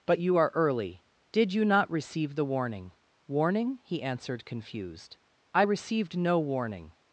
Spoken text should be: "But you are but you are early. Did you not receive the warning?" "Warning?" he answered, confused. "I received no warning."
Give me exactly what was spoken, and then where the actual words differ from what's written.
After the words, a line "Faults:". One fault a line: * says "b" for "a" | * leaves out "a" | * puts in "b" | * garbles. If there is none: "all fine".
"But you are early. Did you not receive the warning?" "Warning?" he answered, confused. "I received no warning."
Faults:
* leaves out "but you are"